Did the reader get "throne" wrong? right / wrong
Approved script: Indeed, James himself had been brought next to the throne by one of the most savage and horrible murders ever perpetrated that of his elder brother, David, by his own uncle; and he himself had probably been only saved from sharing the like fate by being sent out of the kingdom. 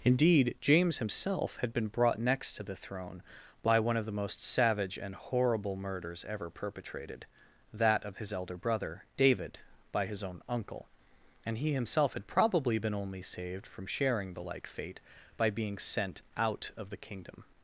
right